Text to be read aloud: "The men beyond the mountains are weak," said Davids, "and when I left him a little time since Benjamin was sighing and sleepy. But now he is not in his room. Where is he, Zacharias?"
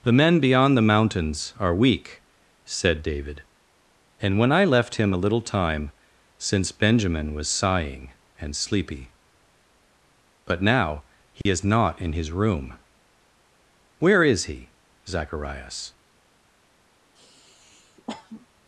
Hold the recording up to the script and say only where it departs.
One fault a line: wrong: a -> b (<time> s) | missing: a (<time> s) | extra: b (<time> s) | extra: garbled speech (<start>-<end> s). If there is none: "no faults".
wrong: Davids -> David (3.0 s)